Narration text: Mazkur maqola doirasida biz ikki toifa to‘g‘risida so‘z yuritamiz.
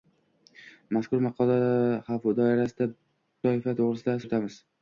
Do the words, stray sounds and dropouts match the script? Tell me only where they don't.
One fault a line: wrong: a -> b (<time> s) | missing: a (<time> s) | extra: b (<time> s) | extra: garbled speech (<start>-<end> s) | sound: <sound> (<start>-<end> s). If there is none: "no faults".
missing: biz ikki (2.9 s)
missing: so‘z (4.2 s)